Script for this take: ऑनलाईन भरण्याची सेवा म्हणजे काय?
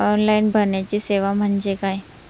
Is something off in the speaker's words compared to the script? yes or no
no